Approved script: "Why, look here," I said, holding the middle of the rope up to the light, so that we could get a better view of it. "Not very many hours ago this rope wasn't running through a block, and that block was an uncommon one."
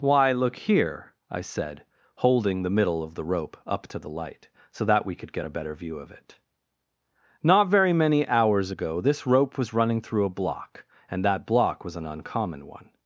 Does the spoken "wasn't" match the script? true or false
false